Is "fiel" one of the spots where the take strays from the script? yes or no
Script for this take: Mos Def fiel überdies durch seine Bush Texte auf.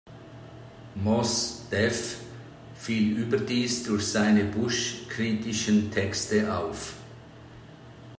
no